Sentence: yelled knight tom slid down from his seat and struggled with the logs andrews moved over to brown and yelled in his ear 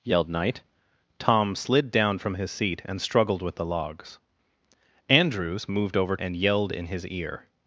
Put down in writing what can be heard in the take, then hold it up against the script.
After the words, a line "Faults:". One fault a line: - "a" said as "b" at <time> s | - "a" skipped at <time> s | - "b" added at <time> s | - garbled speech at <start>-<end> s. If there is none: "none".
yelled knight tom slid down from his seat and struggled with the logs andrews moved over and yelled in his ear
Faults:
- "to brown" skipped at 6.2 s